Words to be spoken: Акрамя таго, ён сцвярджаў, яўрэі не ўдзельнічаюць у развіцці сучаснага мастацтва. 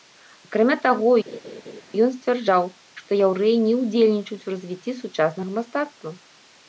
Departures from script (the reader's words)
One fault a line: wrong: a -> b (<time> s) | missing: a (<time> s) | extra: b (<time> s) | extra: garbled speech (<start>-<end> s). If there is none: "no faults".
extra: што (3.0 s)